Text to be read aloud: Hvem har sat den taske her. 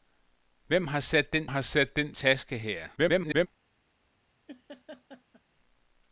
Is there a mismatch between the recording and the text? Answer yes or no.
yes